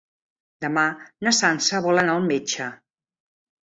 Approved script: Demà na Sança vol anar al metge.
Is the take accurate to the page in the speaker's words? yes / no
yes